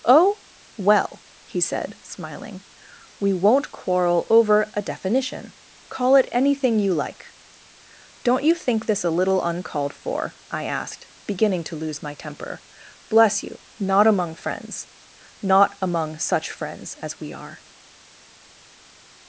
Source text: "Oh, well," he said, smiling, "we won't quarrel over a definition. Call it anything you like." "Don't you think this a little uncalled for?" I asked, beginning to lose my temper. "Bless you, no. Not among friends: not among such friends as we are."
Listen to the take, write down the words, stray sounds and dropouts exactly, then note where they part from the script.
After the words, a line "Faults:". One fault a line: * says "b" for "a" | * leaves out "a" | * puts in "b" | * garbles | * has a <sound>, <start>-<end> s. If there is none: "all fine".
"Oh, well," he said, smiling, "we won't quarrel over a definition. Call it anything you like." "Don't you think this a little uncalled for?" I asked, beginning to lose my temper. "Bless you. Not among friends: not among such friends as we are."
Faults:
* leaves out "no"